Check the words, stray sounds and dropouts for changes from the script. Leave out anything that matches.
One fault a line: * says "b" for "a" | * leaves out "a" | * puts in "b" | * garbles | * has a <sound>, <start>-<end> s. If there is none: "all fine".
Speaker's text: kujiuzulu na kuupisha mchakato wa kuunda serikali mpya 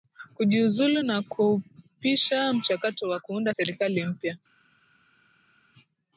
all fine